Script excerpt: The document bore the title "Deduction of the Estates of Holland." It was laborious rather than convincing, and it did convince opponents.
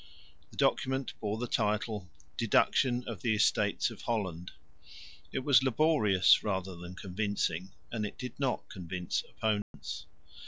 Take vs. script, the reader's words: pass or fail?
fail